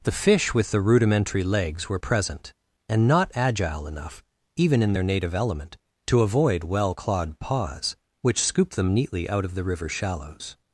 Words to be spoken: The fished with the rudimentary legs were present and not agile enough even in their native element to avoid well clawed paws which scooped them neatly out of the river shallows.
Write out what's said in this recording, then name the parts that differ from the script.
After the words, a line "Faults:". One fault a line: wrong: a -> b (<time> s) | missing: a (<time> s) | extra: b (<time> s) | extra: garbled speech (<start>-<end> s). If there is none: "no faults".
The fish with the rudimentary legs were present and not agile enough even in their native element to avoid well clawed paws which scooped them neatly out of the river shallows.
Faults:
wrong: fished -> fish (0.2 s)